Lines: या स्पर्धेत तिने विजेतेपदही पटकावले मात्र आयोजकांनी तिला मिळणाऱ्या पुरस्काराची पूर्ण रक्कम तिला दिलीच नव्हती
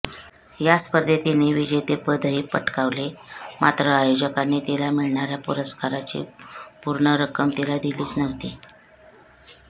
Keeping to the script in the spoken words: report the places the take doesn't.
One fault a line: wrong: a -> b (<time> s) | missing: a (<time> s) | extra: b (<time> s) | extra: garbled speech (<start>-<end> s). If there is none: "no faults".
no faults